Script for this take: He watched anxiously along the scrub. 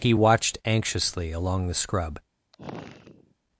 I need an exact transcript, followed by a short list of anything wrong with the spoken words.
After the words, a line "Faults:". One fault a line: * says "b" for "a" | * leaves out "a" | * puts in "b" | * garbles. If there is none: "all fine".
He watched anxiously along the scrub.
Faults:
all fine